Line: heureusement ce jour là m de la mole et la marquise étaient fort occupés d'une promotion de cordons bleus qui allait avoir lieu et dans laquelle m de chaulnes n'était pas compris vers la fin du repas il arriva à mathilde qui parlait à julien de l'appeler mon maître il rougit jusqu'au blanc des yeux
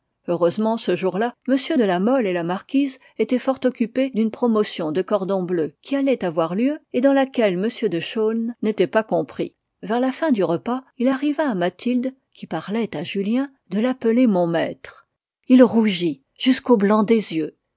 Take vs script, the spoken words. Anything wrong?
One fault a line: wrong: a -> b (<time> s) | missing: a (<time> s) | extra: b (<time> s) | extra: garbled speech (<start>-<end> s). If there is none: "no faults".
no faults